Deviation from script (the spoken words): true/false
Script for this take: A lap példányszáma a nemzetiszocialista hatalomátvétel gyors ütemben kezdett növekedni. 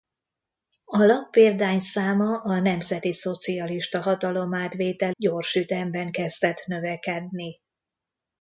false